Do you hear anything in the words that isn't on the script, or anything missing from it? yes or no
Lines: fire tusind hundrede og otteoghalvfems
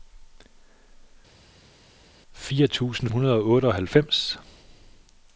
no